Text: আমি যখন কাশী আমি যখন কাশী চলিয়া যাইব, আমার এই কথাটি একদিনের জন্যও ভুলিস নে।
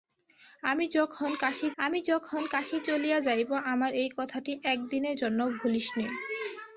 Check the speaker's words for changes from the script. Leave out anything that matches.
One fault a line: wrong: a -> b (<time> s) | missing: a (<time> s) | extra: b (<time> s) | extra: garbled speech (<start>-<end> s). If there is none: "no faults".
no faults